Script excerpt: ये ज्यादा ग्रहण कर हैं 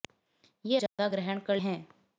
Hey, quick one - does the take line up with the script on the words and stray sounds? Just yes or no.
no